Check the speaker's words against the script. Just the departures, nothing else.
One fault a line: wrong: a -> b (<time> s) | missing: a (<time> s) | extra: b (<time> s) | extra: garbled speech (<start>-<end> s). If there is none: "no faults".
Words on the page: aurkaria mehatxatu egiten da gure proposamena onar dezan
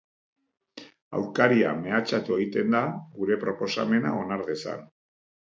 no faults